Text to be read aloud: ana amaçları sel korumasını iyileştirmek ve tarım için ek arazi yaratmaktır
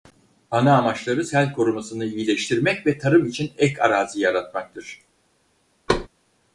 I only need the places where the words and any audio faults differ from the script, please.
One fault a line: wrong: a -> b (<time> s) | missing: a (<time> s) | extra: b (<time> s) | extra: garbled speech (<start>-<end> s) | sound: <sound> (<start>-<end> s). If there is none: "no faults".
sound: thud (5.9-6.1 s)